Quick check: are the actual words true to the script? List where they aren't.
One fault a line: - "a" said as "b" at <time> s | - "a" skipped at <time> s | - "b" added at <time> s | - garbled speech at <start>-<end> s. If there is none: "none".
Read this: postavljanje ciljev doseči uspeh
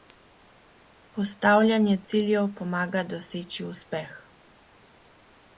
- "pomaga" added at 2.6 s